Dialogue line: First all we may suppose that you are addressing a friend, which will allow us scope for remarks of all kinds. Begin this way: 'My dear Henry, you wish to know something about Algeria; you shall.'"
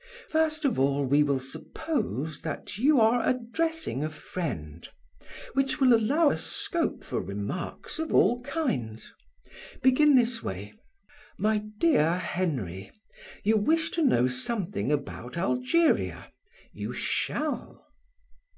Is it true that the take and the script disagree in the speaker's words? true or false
true